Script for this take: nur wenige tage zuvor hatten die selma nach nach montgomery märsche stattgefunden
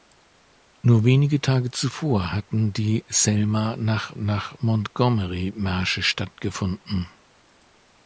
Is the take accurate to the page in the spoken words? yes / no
yes